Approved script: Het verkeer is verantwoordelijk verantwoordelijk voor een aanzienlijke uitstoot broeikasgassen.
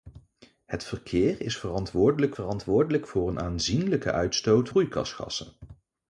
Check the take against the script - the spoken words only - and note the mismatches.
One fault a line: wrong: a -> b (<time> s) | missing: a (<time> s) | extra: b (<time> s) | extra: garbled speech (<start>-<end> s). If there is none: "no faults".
no faults